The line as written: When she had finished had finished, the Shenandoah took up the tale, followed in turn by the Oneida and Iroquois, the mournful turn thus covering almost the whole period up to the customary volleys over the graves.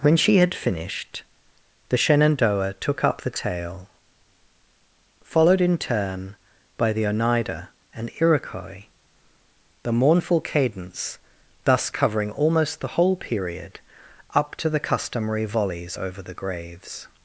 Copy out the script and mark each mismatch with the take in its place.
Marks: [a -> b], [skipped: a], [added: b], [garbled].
When she had finished [skipped: had finished,] the Shenandoah took up the tale, followed in turn by the Oneida and Iroquois, the mournful [turn -> cadence] thus covering almost the whole period up to the customary volleys over the graves.